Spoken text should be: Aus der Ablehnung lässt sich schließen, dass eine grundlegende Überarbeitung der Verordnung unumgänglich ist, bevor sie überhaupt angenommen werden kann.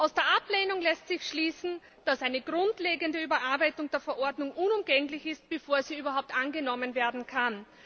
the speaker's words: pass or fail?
pass